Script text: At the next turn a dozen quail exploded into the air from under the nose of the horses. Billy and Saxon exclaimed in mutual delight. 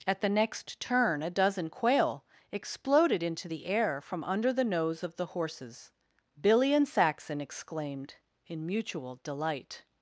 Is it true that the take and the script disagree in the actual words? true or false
false